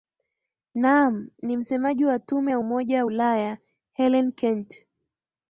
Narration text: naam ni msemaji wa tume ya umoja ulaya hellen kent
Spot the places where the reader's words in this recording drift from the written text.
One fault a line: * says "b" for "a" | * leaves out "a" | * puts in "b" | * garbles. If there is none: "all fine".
all fine